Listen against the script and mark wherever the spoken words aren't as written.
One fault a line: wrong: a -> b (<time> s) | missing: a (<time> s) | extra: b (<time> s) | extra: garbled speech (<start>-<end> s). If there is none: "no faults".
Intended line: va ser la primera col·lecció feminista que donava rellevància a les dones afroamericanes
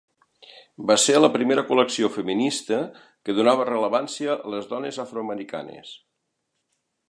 no faults